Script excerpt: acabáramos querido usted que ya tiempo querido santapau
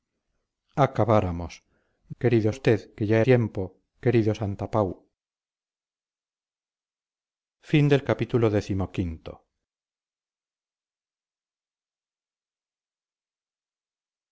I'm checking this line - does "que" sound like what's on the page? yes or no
yes